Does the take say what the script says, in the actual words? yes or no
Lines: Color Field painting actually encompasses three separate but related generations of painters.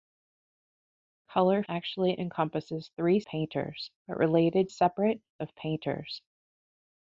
no